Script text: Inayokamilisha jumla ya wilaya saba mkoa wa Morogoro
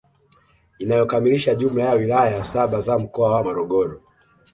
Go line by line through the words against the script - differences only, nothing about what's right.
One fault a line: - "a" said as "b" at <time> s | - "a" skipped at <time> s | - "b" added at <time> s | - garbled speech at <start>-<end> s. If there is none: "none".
- "za" added at 2.8 s